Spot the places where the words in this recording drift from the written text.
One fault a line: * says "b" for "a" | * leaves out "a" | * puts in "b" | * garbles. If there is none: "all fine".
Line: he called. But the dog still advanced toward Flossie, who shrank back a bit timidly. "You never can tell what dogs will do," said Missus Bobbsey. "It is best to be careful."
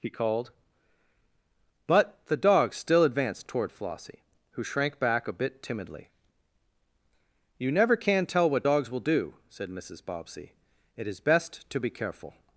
all fine